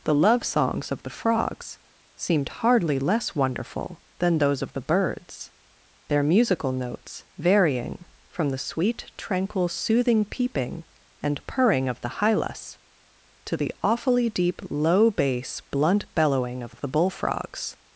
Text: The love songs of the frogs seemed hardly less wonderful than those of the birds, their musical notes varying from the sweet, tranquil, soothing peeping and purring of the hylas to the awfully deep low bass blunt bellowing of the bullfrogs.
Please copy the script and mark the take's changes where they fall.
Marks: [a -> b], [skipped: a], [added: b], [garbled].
The love songs of the frogs seemed hardly less wonderful than those of the birds, their musical notes varying from the sweet, tranquil, soothing peeping and purring of the hylas to the awfully deep low bass blunt bellowing of [added: of] the bullfrogs.